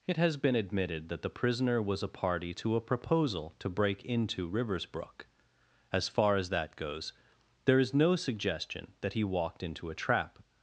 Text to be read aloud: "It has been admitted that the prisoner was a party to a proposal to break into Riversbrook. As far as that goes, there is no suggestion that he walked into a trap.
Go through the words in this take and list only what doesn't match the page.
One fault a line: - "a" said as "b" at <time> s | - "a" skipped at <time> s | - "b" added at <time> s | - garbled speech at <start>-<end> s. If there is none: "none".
none